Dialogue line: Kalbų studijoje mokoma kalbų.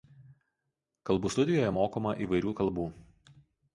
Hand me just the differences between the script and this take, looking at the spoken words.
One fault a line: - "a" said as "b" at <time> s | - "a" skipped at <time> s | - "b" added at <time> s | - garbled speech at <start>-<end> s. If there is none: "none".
- "įvairių" added at 2.3 s